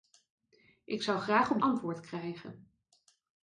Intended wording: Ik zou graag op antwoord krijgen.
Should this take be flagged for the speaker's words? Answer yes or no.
no